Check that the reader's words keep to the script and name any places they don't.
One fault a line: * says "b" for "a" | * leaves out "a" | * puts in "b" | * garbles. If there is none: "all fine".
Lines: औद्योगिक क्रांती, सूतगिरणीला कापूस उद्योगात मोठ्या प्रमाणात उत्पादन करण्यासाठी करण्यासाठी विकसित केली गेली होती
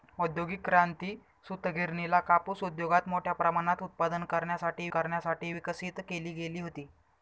all fine